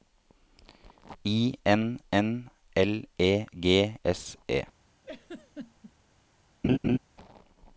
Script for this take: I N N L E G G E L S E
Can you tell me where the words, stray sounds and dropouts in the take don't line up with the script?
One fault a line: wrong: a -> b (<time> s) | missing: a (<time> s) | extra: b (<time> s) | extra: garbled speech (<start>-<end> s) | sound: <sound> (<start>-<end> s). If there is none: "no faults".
missing: G E L (4.0 s)
sound: laugh (5.0-5.9 s)
sound: laugh (6.6-7.0 s)